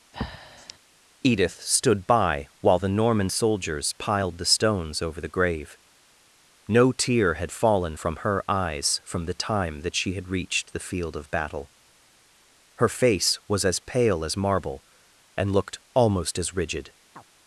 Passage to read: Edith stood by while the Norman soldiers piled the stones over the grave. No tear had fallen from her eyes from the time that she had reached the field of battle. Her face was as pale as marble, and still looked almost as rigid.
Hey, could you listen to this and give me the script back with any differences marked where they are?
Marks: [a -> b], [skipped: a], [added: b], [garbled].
Edith stood by while the Norman soldiers piled the stones over the grave. No tear had fallen from her eyes from the time that she had reached the field of battle. Her face was as pale as marble, and [skipped: still] looked almost as rigid.